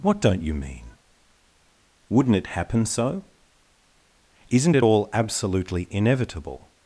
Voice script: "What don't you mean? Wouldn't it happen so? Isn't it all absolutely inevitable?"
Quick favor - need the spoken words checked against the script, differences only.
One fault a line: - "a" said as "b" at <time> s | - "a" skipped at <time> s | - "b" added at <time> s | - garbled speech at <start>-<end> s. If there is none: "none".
none